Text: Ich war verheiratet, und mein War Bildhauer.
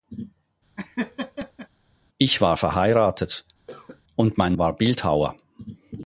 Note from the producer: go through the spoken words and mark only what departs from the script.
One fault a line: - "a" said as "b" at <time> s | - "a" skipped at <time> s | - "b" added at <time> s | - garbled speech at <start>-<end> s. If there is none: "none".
none